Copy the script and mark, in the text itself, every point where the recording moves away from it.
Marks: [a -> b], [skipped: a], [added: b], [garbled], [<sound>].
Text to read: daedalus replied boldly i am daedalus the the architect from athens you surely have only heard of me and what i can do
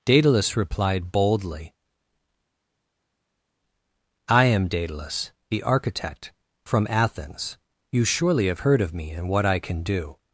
daedalus replied boldly i am daedalus the [skipped: the] architect from athens you surely have [skipped: only] heard of me and what i can do